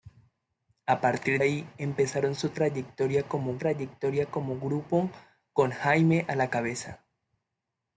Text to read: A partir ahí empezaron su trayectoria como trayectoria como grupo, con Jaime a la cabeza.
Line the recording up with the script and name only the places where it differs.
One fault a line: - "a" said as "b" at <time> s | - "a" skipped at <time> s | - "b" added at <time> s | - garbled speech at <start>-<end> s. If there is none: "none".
none